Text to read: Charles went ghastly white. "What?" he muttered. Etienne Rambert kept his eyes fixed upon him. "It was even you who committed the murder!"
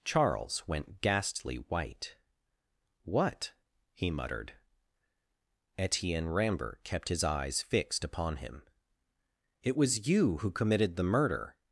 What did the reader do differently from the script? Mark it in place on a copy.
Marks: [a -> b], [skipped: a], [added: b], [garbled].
Charles went ghastly white. "What?" he muttered. Etienne Rambert kept his eyes fixed upon him. "It was [skipped: even] you who committed the murder!"